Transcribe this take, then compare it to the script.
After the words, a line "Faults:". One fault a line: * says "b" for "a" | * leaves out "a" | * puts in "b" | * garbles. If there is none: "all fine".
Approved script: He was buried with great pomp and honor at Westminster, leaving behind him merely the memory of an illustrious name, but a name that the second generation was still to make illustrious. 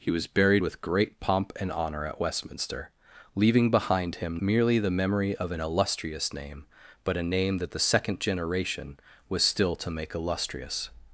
He was buried with great pomp and honor at Westminster, leaving behind him merely the memory of an illustrious name, but a name that the second generation was still to make illustrious.
Faults:
all fine